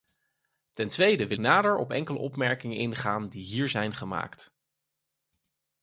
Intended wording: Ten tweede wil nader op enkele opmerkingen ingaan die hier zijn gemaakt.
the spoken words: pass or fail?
pass